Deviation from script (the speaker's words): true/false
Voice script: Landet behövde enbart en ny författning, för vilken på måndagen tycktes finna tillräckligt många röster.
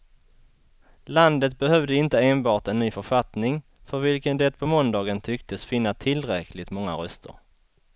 true